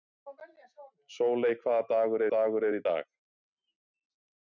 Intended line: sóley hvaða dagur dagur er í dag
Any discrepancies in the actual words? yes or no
no